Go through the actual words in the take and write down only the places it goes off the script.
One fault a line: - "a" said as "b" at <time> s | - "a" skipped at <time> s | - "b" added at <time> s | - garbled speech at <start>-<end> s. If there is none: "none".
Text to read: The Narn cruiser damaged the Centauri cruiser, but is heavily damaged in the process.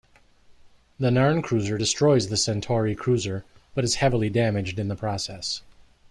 - "damaged" said as "destroys" at 1.7 s